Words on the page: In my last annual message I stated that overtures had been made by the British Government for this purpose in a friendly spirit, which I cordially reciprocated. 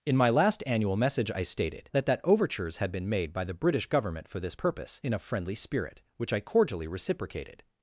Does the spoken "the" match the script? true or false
true